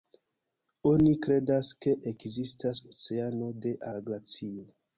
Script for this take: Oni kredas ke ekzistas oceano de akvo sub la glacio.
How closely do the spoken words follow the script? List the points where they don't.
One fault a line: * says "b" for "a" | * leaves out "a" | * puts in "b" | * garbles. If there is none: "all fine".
* leaves out "akvo sub"